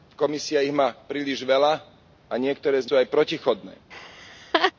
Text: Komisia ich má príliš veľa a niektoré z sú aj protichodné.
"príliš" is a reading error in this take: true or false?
false